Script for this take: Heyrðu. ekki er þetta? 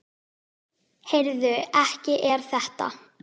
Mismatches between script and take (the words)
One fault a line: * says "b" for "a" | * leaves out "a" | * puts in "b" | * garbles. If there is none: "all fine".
all fine